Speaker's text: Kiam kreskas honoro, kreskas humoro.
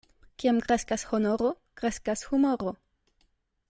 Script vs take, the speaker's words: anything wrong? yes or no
no